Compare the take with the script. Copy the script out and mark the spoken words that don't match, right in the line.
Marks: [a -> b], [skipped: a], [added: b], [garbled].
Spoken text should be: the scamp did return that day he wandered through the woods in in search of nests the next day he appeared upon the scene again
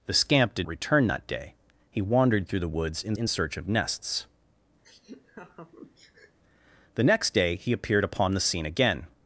the scamp did return that day he wandered through the woods in in search of nests the next day he appeared upon the scene again